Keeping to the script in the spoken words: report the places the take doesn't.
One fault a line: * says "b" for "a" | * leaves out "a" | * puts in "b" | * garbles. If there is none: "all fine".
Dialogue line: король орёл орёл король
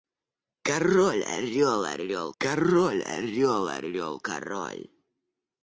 * puts in "орёл орёл король"